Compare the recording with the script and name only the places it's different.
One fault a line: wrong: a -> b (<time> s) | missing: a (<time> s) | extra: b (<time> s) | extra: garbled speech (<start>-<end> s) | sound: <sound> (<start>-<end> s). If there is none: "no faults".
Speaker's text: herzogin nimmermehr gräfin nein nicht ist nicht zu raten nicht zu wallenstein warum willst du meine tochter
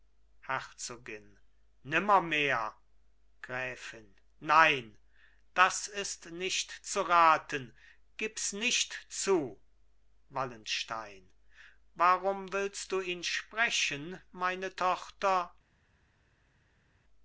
wrong: nicht -> das (5.5 s)
extra: gibs (8.2 s)
extra: ihn sprechen (13.0 s)